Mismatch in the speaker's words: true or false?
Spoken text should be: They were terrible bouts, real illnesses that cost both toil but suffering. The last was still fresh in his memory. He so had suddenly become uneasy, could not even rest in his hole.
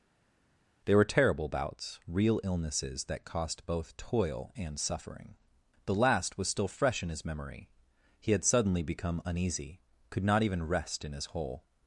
true